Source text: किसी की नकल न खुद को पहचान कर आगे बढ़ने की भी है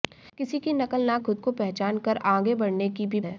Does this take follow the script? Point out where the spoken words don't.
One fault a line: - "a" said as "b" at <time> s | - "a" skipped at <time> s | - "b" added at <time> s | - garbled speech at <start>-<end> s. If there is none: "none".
none